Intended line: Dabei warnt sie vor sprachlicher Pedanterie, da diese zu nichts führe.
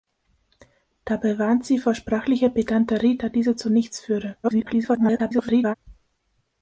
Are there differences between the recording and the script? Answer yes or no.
yes